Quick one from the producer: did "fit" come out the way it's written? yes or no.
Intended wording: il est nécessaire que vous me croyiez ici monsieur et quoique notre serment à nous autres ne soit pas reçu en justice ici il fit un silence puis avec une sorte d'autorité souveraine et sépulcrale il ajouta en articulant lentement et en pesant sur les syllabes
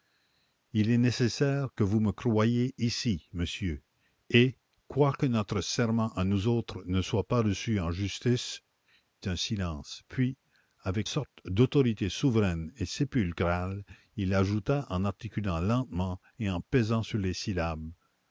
no